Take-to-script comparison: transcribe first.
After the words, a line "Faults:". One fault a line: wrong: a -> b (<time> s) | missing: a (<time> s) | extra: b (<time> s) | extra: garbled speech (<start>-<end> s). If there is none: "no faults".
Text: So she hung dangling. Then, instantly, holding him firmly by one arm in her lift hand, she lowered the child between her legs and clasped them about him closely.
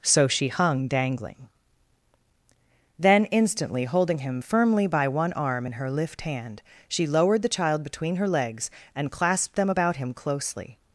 So she hung dangling. Then, instantly, holding him firmly by one arm in her lift hand, she lowered the child between her legs and clasped them about him closely.
Faults:
no faults